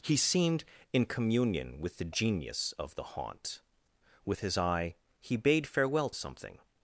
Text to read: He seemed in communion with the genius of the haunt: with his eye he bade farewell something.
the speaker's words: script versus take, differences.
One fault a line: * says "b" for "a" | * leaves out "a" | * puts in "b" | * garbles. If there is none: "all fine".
all fine